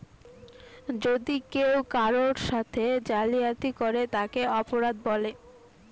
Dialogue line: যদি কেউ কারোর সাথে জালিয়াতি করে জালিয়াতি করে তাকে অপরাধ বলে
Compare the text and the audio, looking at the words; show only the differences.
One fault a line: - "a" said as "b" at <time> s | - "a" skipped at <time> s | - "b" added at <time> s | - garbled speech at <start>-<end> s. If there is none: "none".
- "জালিয়াতি করে" skipped at 4.0 s